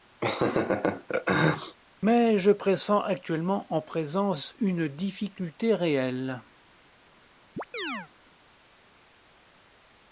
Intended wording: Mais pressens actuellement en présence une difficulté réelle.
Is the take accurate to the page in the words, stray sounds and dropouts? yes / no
no